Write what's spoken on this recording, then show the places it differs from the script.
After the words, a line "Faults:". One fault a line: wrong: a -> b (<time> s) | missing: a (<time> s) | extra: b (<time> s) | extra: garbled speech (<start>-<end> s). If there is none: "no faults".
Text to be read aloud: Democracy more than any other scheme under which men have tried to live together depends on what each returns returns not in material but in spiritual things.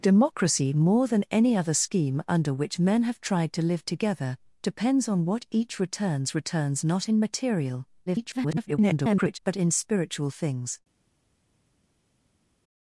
Democracy more than any other scheme under which men have tried to live together depends on what each returns returns not in material [garbled] but in spiritual things.
Faults:
extra: garbled speech (8.1-9.4 s)